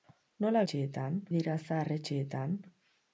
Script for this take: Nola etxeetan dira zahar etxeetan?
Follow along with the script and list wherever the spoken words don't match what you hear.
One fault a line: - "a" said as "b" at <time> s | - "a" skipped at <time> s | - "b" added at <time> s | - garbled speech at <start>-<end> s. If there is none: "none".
none